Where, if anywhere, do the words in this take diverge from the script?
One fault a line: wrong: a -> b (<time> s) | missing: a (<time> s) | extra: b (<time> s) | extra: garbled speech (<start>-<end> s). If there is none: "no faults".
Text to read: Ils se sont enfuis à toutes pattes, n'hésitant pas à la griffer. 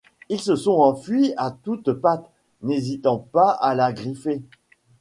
no faults